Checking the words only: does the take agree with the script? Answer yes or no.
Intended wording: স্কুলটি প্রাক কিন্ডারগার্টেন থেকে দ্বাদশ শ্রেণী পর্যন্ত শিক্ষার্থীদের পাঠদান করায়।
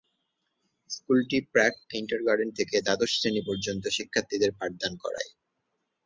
yes